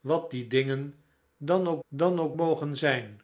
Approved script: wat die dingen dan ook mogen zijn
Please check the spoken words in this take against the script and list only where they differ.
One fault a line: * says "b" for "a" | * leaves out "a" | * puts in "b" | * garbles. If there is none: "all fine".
* puts in "dan ook"